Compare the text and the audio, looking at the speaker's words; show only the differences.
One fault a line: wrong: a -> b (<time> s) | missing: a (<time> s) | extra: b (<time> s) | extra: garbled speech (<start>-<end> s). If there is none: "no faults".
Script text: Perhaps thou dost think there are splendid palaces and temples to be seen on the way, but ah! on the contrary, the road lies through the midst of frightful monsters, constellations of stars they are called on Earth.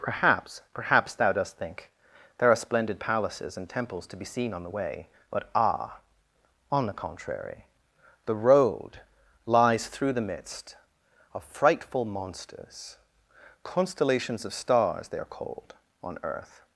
extra: perhaps (0.7 s)